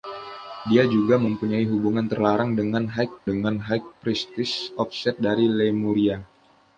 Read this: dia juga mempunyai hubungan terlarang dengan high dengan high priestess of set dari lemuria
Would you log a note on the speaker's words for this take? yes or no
no